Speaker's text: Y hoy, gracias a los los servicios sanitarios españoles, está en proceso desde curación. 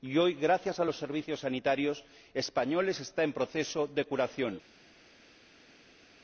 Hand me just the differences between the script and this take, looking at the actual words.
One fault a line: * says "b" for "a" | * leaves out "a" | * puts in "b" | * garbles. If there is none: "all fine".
* leaves out "los"
* says "de" for "desde"